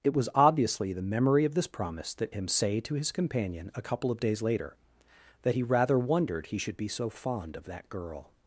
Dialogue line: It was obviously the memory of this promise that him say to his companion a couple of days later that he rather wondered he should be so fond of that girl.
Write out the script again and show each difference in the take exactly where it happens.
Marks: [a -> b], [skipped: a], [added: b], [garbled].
It was obviously the memory of this promise that him say to his companion a couple of days later that he rather wondered he should be so fond of that girl.